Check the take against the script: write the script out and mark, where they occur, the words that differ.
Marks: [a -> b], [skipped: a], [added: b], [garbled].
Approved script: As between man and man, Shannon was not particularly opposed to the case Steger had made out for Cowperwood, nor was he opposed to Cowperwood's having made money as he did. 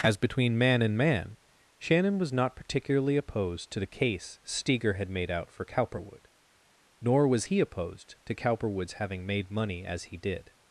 As between man and man, Shannon was not particularly opposed to the case Steger had made out for Cowperwood, nor was he opposed to Cowperwood's having made money as he did.